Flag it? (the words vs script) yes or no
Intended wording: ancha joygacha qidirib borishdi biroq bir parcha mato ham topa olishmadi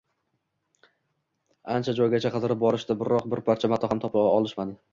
no